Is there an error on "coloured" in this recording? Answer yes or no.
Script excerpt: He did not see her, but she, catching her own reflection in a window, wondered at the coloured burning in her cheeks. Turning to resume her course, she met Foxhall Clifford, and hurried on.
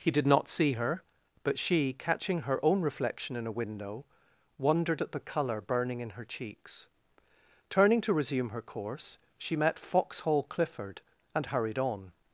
yes